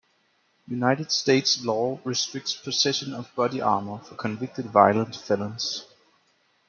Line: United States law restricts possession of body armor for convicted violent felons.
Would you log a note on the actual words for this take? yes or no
no